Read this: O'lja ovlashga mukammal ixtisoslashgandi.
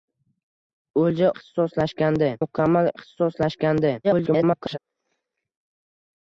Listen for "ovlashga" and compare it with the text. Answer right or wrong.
wrong